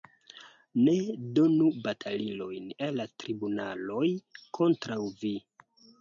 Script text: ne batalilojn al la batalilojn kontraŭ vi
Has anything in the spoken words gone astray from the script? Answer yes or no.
yes